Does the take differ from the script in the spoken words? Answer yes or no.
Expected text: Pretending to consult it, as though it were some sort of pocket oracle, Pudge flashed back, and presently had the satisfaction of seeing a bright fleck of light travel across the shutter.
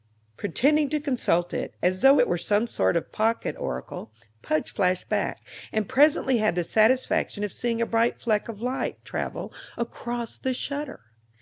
no